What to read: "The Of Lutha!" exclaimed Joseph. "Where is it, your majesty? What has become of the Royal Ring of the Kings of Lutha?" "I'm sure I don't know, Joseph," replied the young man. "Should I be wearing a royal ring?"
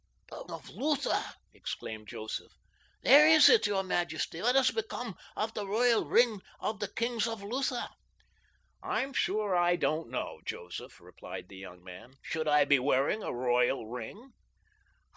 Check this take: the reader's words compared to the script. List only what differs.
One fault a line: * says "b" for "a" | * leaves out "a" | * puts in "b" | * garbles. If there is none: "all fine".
all fine